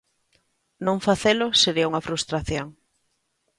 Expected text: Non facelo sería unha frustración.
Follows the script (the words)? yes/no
yes